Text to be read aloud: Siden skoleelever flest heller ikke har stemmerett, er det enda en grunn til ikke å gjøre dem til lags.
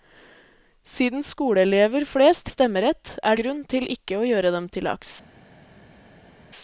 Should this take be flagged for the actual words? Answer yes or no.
yes